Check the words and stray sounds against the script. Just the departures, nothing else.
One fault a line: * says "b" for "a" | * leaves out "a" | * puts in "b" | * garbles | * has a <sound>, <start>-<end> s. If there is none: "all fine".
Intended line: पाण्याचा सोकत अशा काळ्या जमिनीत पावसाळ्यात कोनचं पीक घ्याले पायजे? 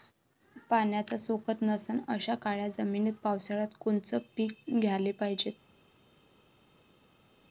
* puts in "नसन"